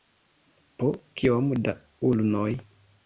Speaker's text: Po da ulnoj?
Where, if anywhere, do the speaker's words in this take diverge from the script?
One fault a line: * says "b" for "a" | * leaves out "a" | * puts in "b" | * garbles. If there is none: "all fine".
* puts in "kiom"